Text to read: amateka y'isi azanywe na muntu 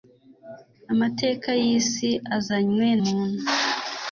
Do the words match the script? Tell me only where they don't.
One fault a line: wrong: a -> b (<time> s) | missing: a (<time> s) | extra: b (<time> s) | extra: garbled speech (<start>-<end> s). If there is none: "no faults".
missing: na (2.9 s)